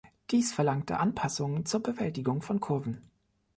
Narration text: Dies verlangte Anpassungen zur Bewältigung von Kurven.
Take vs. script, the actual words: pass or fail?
pass